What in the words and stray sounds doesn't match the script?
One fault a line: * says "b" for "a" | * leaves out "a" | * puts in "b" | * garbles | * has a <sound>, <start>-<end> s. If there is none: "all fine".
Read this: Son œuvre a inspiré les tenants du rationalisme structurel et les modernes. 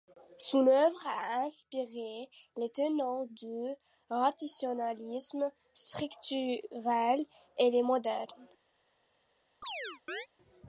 * has a chirp, 9.6-10.3 s